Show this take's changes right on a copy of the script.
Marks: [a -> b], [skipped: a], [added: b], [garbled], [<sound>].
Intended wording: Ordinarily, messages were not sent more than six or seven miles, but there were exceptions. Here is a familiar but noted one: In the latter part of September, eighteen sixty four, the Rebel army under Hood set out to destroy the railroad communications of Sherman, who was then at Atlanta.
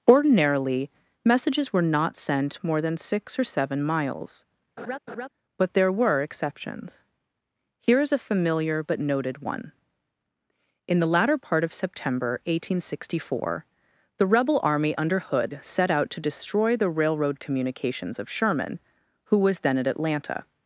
Ordinarily, messages were not sent more than six or seven miles, [laugh] but there were exceptions. Here is a familiar but noted one: In the latter part of September, eighteen sixty four, the Rebel army under Hood set out to destroy the railroad communications of Sherman, who was then at Atlanta.